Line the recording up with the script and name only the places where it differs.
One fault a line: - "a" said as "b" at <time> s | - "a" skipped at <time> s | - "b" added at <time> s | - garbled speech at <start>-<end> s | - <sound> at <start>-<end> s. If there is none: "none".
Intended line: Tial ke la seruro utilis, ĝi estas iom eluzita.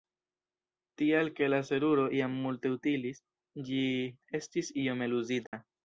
- "jam multe" added at 2.2 s
- "estas" said as "estis" at 4.4 s
- dropout at 5.5-5.5 s